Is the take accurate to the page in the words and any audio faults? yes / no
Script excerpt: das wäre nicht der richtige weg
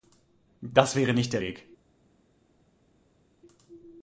no